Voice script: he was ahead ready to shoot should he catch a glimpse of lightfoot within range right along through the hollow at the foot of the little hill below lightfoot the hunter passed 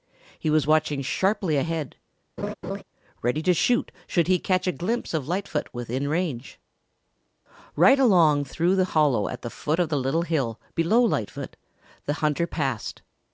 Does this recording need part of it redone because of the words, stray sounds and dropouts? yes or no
yes